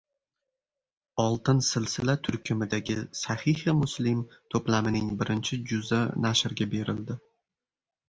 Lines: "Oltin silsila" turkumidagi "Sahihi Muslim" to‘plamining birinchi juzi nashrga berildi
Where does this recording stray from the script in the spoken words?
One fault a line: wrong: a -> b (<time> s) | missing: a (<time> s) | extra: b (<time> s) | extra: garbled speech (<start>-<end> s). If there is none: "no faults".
no faults